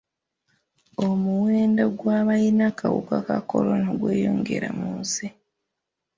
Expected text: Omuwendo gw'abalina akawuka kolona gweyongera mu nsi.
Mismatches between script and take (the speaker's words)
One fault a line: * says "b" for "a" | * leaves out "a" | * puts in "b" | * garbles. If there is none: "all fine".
* puts in "ka"